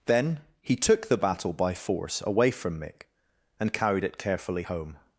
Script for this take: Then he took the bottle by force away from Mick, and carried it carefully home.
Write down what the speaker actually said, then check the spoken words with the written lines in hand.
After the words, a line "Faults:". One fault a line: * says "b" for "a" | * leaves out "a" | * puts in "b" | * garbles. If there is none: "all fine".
Then he took the battle by force away from Mick, and carried it carefully home.
Faults:
* says "battle" for "bottle"